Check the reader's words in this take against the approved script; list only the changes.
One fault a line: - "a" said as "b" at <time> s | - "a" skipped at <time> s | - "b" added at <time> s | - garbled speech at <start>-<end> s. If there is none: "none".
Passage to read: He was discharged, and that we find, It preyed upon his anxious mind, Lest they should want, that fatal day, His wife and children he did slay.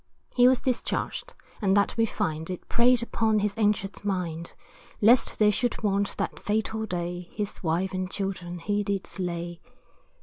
none